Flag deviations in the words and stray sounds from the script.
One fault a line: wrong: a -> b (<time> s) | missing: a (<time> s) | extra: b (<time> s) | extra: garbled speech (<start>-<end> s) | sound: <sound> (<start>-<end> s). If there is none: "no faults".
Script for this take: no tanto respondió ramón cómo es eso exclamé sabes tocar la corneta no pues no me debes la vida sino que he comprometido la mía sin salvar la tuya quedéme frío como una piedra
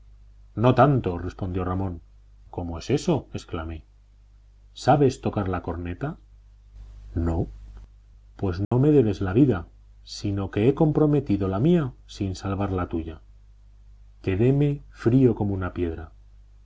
sound: dropout (8.6-8.7 s)